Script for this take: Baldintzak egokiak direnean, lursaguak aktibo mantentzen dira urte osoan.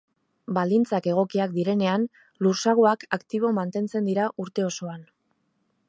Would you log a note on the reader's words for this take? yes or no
no